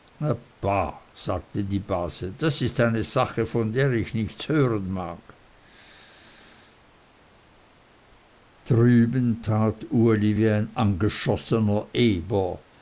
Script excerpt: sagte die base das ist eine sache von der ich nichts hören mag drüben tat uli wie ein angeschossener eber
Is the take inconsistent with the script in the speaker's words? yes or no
no